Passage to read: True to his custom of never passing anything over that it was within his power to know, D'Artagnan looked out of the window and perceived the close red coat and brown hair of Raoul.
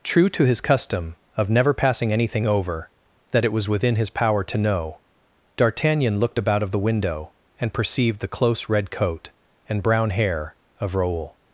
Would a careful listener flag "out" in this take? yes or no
yes